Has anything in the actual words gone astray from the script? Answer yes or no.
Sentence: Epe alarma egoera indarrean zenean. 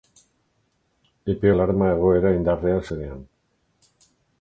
no